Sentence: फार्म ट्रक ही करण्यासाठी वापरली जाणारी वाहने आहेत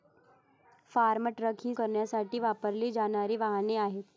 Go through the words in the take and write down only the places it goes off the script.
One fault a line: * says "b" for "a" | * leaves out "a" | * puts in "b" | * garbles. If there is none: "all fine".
all fine